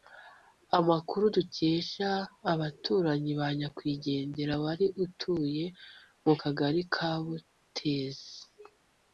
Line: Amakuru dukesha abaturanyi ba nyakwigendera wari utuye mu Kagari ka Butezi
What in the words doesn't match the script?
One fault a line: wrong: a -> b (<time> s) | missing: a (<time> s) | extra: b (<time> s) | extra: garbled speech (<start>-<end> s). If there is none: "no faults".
no faults